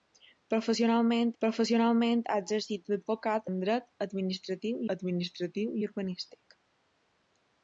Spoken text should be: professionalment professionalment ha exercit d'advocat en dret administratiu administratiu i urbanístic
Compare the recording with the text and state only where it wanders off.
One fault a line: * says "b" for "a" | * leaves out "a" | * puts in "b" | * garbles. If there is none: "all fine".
all fine